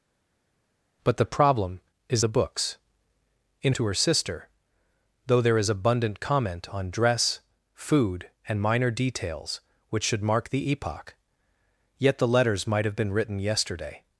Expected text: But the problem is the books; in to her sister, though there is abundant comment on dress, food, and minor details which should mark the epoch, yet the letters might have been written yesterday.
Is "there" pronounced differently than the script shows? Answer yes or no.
no